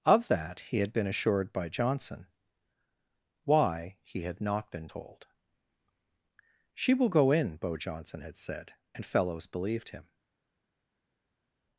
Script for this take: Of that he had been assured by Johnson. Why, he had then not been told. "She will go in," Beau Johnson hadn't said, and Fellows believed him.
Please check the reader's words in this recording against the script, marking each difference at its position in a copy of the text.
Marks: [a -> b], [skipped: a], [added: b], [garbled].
Of that he had been assured by Johnson. Why, he had [skipped: then] not been told. "She will go in," Beau Johnson [hadn't -> had] said, and Fellows believed him.